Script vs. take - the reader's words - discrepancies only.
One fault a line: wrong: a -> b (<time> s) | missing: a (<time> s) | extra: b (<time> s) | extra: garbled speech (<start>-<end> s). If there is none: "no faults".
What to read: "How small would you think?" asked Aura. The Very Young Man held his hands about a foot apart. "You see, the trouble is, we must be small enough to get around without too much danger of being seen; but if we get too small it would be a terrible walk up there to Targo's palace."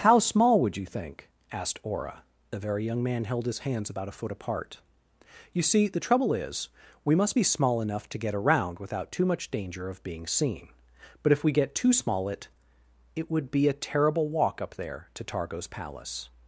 extra: it (13.2 s)